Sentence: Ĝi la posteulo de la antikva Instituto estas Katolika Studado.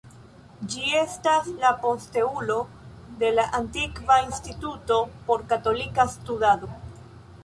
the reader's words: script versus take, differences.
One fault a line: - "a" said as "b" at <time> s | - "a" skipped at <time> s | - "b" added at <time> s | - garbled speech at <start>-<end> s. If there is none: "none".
- "estas" added at 1.0 s
- "estas" said as "por" at 5.3 s